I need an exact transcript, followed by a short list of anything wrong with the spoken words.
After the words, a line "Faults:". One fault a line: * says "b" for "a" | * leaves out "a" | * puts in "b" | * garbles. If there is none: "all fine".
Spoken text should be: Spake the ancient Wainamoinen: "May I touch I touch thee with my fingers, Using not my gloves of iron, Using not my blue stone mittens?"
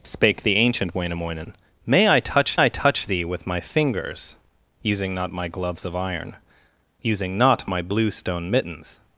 Spake the ancient Wainamoinen: "May I touch I touch thee with my fingers, Using not my gloves of iron, Using not my blue stone mittens?"
Faults:
all fine